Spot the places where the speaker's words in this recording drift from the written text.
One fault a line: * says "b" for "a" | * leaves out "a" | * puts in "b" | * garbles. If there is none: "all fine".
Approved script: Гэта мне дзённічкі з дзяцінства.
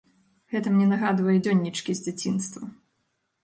* puts in "нагадвае"